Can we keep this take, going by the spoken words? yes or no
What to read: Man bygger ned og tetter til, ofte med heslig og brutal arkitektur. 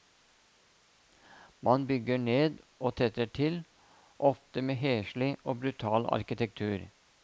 yes